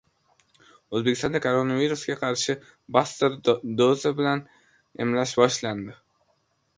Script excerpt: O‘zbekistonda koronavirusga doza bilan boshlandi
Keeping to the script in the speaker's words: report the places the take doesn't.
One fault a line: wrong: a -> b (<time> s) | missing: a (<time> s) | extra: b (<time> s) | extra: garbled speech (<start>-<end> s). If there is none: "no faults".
extra: qarshi buster (2.2 s)
extra: emlash (5.1 s)